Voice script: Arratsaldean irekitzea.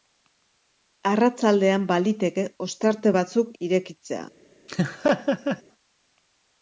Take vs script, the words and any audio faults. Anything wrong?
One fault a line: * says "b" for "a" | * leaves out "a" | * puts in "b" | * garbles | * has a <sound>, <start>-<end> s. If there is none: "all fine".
* puts in "baliteke ostarte batzuk"
* has a laugh, 4.7-5.6 s